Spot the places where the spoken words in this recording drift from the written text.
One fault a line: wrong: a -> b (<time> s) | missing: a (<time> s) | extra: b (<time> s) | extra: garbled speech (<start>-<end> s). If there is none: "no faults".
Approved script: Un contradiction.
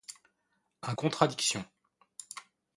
no faults